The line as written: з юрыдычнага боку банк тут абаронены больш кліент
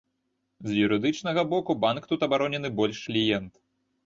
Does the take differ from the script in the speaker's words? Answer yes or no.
no